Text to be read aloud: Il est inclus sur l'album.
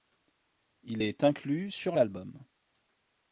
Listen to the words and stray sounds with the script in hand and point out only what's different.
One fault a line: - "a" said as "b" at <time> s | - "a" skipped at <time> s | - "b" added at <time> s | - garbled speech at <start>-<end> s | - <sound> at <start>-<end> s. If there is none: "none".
none